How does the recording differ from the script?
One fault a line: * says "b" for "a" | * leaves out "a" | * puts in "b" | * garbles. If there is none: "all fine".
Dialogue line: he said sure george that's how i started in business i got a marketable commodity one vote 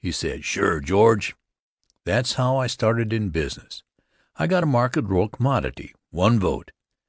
all fine